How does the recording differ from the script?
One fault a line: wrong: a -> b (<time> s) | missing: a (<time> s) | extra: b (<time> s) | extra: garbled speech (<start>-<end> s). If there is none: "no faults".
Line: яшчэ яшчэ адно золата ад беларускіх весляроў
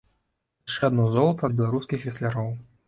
missing: яшчэ (0.8 s)